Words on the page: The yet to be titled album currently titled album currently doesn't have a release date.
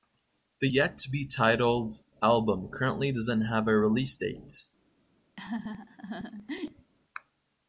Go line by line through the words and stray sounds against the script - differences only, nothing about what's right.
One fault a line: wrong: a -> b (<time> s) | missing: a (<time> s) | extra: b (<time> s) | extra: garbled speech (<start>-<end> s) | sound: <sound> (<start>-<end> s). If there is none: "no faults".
missing: titled album currently (3.1 s)
sound: laugh (5.4-6.9 s)